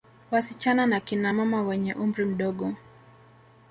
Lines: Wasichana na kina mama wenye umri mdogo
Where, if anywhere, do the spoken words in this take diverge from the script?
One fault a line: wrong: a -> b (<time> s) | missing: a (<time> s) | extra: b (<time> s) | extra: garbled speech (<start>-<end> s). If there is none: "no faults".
no faults